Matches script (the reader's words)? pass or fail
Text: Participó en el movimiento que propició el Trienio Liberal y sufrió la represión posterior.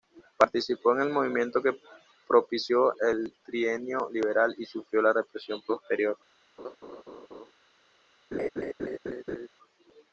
pass